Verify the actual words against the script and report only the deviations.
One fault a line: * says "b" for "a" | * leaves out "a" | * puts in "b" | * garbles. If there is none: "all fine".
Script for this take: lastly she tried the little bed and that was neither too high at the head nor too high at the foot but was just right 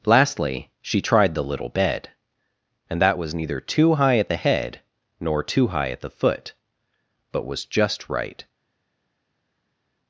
all fine